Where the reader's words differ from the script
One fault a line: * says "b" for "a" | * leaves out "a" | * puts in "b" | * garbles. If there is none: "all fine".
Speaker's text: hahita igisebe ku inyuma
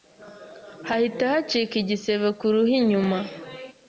* puts in "hacika"
* puts in "ruhu"